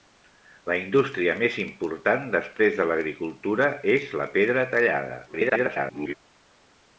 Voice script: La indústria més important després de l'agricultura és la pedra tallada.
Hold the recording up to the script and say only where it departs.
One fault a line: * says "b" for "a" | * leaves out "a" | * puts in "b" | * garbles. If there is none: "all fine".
* garbles